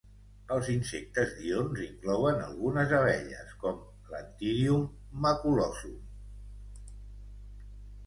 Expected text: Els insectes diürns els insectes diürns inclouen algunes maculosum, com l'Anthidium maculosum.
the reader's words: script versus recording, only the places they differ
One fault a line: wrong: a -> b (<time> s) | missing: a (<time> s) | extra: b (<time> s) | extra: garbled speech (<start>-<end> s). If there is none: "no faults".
missing: els insectes diürns (1.8 s)
wrong: maculosum -> abelles (3.0 s)